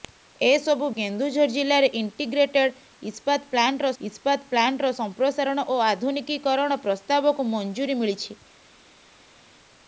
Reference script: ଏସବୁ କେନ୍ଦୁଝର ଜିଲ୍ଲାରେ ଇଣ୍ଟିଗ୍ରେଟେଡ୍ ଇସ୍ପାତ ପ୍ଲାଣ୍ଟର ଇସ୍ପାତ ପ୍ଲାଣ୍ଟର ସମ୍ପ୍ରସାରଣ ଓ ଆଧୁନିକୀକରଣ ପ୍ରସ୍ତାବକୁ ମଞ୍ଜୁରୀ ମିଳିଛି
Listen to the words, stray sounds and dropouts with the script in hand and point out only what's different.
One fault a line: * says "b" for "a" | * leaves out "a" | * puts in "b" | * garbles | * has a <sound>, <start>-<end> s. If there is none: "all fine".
all fine